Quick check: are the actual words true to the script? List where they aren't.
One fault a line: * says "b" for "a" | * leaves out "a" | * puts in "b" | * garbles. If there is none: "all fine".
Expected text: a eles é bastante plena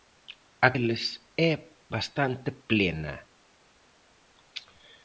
all fine